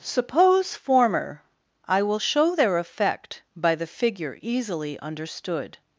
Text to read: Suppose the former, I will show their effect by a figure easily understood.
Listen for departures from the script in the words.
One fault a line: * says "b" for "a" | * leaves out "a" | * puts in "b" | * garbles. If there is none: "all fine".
* leaves out "the"
* says "the" for "a"